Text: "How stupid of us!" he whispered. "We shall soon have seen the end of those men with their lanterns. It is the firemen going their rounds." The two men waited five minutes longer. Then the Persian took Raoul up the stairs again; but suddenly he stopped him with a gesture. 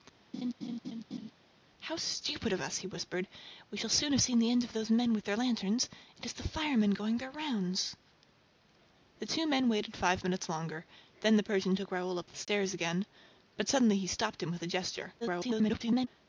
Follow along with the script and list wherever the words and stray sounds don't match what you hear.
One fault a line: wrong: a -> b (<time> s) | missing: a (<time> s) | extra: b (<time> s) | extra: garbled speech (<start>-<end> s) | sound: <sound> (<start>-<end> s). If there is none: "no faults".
sound: laugh (0.3-1.3 s)
sound: dropout (12.4-12.5 s)
extra: garbled speech (15.2-16.1 s)